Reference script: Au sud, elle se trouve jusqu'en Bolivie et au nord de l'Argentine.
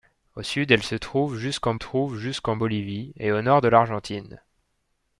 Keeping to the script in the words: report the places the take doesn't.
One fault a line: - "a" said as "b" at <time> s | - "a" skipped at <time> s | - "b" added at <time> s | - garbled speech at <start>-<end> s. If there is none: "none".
- "trouve jusqu'en" added at 1.7 s